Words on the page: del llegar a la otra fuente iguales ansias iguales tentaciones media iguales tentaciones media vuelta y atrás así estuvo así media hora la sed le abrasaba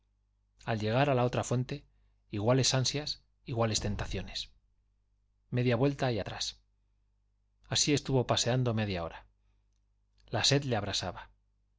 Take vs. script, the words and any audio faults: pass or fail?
fail